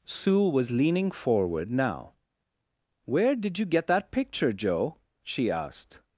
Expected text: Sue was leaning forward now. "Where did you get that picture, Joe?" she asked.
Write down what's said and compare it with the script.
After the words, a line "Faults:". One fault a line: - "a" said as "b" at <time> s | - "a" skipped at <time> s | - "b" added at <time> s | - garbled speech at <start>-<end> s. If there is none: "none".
Sue was leaning forward now. "Where did you get that picture, Joe?" she asked.
Faults:
none